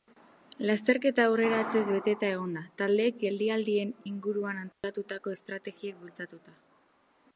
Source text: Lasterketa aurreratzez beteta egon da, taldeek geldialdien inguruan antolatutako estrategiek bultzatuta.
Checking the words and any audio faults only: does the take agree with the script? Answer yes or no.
no